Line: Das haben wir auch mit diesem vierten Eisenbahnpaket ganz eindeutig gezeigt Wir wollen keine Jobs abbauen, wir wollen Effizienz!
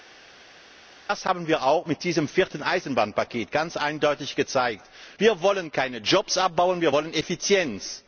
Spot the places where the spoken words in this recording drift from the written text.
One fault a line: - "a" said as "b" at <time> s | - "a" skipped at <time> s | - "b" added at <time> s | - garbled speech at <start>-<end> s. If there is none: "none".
none